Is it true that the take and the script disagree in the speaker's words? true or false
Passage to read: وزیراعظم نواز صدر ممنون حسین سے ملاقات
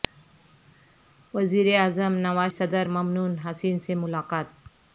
false